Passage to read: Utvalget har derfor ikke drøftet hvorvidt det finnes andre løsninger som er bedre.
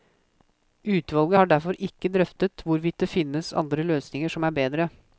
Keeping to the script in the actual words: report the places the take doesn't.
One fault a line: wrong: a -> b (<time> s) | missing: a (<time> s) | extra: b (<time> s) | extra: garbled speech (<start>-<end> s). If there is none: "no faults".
no faults